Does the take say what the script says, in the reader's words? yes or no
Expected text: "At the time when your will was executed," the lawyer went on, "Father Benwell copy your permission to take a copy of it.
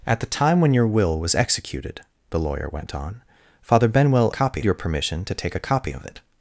yes